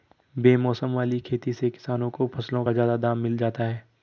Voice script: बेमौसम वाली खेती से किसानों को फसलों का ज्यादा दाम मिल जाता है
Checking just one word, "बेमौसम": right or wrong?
right